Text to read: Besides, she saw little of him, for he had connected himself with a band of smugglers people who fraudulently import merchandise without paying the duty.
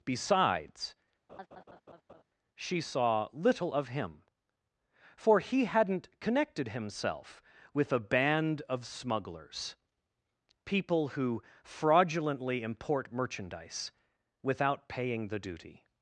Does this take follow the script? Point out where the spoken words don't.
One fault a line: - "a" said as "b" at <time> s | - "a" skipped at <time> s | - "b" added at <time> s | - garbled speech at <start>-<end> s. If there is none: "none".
- "had" said as "hadn't" at 5.6 s